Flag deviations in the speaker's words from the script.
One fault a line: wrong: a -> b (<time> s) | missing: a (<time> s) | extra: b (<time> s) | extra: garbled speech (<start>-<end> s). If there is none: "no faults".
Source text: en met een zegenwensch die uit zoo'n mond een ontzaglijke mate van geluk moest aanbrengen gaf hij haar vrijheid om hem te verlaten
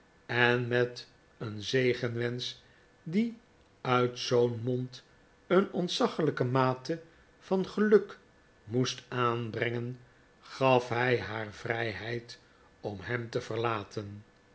no faults